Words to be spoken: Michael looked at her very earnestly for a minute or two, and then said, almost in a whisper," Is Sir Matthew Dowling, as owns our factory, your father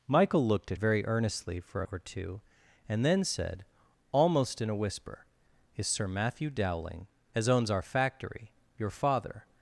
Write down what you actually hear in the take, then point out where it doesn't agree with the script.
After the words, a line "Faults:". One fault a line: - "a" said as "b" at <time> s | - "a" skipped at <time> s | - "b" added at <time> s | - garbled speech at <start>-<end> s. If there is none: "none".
Michael looked at very earnestly for a or two, and then said, almost in a whisper," Is Sir Matthew Dowling, as owns our factory, your father
Faults:
- "her" skipped at 0.8 s
- "minute" skipped at 1.9 s